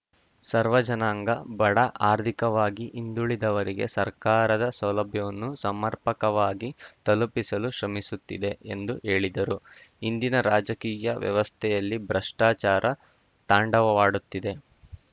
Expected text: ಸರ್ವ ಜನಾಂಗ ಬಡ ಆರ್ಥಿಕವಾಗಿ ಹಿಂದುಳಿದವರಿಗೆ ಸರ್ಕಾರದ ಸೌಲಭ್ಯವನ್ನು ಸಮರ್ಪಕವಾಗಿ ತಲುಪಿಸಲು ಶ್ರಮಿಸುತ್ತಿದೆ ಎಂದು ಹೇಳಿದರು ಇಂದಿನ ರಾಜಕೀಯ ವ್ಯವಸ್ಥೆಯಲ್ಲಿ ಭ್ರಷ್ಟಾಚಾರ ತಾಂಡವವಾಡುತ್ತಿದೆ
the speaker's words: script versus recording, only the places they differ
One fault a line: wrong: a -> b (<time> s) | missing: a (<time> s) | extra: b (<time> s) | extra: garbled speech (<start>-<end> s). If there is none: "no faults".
no faults